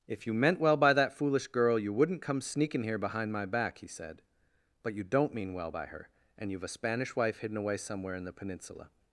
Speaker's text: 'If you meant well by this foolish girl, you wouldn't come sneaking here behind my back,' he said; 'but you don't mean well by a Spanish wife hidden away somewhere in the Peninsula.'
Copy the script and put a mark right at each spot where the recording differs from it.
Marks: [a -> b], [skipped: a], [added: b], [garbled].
'If you meant well by [this -> that] foolish girl, you wouldn't come sneaking here behind my back,' he said; 'but you don't mean well by [added: her and you've] a Spanish wife hidden away somewhere in the Peninsula.'